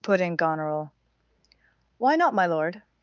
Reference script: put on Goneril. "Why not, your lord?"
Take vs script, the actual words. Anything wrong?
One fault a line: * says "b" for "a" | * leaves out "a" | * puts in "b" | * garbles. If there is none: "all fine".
* says "in" for "on"
* says "my" for "your"